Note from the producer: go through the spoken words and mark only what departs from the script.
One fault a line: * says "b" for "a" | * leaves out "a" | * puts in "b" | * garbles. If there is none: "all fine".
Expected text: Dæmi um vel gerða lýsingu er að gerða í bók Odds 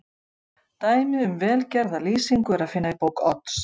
* says "finna" for "gerða"